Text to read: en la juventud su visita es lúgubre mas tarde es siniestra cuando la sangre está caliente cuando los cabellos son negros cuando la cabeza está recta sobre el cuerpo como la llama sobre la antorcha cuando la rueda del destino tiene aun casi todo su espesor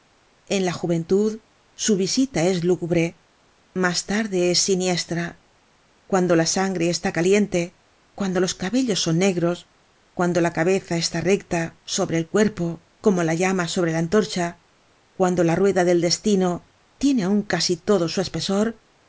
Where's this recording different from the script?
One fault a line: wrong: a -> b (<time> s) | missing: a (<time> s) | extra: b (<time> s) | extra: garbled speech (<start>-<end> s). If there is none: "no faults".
no faults